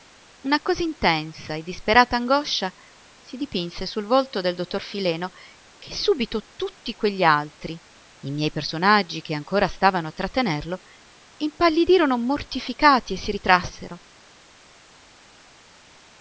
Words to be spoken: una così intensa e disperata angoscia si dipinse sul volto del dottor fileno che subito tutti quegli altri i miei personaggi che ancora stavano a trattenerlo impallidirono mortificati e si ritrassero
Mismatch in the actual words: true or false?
false